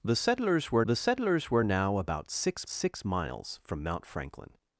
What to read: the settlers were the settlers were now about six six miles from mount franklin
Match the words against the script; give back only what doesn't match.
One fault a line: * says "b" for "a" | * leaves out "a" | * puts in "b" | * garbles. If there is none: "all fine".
all fine